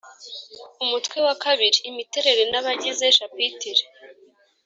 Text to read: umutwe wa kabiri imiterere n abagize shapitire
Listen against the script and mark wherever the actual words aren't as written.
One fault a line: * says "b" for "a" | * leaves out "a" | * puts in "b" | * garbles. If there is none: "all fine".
all fine